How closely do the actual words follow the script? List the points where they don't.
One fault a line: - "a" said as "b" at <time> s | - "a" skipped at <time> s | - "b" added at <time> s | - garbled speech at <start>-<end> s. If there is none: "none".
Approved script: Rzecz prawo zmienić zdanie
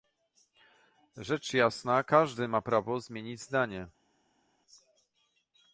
- "jasna każdy ma" added at 1.5 s